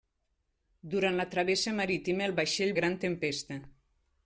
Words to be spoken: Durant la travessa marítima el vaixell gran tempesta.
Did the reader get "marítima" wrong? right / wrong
right